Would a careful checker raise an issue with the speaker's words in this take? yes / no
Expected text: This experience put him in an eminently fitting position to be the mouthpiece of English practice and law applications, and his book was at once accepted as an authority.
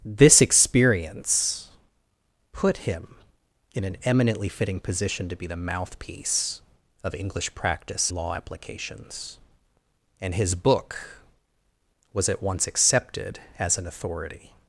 yes